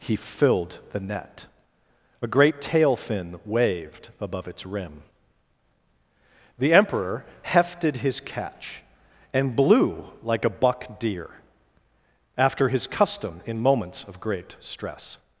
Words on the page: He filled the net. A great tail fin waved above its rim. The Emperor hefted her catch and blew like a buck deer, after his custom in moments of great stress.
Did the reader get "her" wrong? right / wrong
wrong